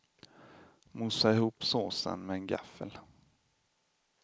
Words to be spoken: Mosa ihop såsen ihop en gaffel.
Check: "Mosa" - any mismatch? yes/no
no